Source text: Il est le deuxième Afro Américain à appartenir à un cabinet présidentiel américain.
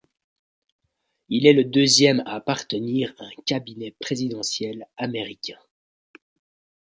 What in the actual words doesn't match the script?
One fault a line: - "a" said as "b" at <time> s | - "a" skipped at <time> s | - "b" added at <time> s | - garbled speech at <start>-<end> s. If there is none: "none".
- "Afro Américain" skipped at 2.2 s